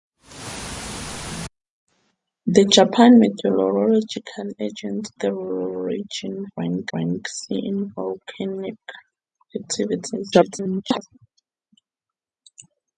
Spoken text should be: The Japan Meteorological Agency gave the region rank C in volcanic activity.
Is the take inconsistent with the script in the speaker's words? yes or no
yes